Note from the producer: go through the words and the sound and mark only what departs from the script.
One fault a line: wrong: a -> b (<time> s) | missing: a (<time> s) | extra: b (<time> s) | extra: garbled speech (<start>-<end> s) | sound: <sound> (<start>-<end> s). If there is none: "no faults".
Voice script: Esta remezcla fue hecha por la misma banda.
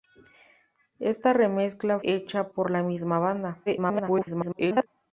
missing: fue (2.0 s)
extra: garbled speech (3.7-4.9 s)